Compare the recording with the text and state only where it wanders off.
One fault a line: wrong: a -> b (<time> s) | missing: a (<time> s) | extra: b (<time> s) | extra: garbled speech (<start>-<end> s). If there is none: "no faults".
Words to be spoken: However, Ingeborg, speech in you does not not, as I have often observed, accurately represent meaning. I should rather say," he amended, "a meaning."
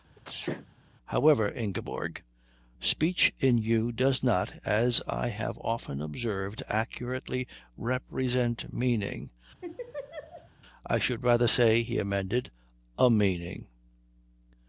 missing: not (4.5 s)